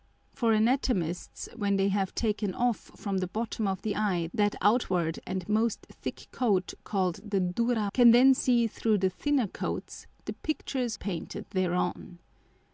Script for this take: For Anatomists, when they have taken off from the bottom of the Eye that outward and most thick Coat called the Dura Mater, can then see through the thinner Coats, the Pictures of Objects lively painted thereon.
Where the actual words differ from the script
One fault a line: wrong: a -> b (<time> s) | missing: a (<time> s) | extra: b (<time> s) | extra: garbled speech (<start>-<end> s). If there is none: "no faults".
missing: Mater (7.9 s)
missing: of Objects lively (11.0 s)